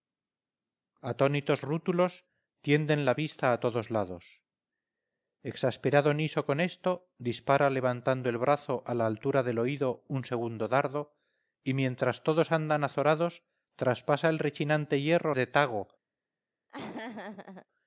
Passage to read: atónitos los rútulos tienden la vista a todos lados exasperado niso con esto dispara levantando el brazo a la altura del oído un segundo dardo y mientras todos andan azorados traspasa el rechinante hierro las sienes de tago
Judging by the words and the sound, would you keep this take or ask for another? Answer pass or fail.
fail